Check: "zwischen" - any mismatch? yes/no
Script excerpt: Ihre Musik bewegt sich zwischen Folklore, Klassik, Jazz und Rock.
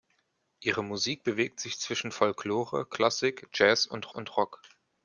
no